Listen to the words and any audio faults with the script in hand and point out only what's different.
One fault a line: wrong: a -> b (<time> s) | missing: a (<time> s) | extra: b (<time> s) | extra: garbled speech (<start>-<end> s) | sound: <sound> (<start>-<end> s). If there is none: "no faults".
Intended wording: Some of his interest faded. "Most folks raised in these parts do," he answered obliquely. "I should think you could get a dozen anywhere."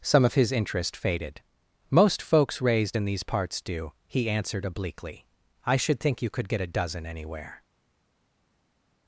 no faults